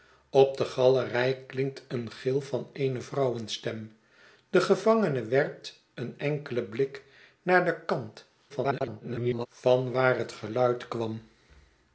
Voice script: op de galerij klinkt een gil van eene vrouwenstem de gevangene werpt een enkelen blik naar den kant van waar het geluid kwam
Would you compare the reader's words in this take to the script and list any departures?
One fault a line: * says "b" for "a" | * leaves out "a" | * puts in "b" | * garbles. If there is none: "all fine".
* garbles